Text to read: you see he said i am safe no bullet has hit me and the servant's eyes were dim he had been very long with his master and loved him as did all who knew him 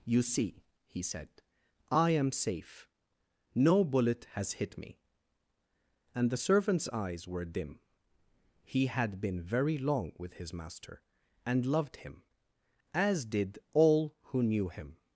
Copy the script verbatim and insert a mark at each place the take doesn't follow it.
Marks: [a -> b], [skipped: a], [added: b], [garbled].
you see he said i am safe no bullet has hit me and the servant's eyes were dim he had been very long with his master and loved him as did all who knew him